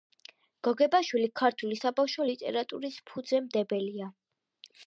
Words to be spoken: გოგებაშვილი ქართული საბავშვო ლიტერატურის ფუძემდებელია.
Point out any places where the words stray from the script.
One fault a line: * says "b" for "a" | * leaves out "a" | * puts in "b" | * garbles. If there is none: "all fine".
all fine